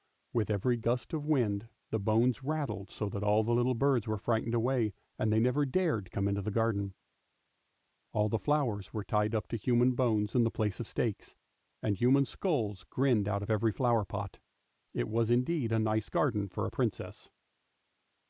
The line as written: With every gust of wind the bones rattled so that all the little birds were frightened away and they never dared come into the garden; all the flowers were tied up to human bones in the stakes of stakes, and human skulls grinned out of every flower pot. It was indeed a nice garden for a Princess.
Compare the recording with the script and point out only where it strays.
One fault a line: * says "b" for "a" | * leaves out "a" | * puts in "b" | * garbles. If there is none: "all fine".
* says "place" for "stakes"